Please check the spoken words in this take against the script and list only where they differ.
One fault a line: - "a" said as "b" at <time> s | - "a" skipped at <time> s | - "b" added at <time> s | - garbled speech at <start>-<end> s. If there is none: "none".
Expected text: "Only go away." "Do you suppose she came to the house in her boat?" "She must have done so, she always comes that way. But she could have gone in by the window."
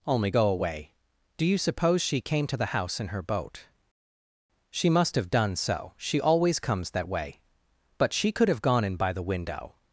none